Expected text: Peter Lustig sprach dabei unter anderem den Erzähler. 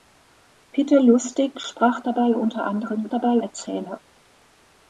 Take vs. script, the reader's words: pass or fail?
fail